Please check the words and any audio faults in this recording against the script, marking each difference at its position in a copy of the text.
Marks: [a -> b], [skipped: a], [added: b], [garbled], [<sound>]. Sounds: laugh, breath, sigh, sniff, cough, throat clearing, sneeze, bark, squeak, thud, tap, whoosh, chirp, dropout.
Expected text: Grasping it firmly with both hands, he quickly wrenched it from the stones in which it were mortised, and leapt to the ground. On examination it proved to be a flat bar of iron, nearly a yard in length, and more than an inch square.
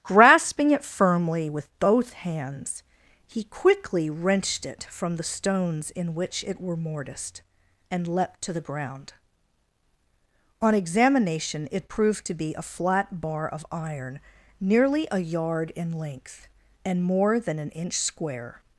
Grasping it firmly with both hands, he quickly wrenched it from the stones in which it were mortised, and leapt to the ground. On examination it proved to be a flat bar of iron, nearly a yard in length, and more than an inch square.